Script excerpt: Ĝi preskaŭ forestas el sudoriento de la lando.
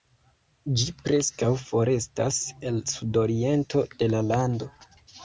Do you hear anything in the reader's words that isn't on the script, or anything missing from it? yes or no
no